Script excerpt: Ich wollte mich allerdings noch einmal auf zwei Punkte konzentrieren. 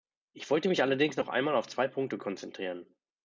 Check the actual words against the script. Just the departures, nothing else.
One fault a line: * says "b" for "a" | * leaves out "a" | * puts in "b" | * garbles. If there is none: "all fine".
all fine